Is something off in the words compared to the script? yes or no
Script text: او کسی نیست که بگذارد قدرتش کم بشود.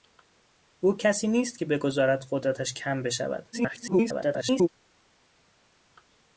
yes